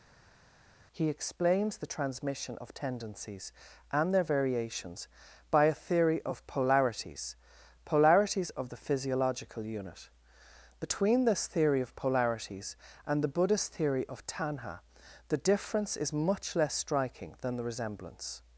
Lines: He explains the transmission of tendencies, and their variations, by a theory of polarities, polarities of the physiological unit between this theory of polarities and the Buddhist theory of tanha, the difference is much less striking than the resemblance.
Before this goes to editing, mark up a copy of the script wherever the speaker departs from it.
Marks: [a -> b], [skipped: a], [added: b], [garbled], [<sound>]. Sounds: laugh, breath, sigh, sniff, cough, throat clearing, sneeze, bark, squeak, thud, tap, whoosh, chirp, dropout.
He explains the transmission of tendencies, and their variations, by a theory of polarities, polarities of the physiological unit between this theory of polarities and the Buddhist theory of tanha, the difference is much less striking than the resemblance.